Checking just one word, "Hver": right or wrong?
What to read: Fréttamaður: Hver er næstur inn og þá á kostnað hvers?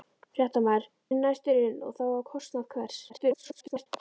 wrong